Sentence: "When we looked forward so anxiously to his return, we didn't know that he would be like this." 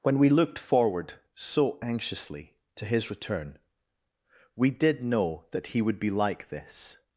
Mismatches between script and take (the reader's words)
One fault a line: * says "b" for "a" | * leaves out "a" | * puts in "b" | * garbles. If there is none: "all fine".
* says "did" for "didn't"